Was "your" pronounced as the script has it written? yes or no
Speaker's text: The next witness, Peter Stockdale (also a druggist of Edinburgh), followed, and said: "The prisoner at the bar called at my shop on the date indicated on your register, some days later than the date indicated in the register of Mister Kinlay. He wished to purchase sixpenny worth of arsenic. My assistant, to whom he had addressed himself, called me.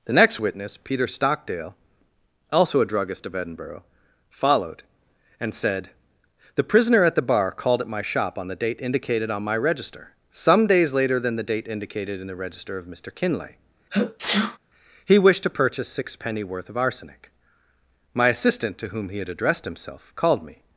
no